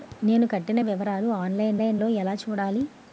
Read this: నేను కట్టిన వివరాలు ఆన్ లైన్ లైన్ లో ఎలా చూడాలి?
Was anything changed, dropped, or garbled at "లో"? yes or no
no